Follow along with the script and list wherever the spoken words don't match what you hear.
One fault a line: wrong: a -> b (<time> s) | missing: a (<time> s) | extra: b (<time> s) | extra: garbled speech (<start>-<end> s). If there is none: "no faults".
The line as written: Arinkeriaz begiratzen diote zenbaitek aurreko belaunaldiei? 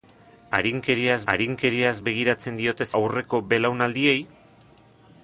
extra: arinkeriaz (1.3 s)
missing: zenbaitek (2.9 s)